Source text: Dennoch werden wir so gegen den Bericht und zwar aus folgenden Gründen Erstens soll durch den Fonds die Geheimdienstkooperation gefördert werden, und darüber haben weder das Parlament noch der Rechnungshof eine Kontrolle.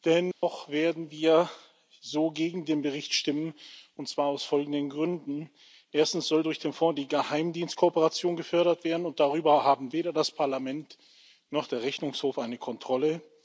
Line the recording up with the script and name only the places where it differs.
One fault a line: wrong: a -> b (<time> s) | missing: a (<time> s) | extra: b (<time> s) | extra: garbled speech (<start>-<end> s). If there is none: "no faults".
extra: stimmen (3.1 s)